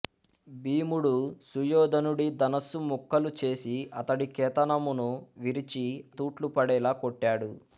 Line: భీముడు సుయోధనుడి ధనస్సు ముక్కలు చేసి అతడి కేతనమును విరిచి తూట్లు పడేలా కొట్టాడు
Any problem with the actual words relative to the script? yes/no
no